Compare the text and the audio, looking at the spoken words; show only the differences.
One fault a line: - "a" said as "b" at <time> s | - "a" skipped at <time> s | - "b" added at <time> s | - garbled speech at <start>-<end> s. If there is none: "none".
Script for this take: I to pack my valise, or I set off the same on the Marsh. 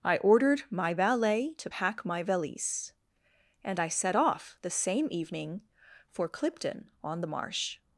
- "ordered my valet" added at 0.2 s
- "or" said as "and" at 3.6 s
- "evening for Clipton" added at 5.1 s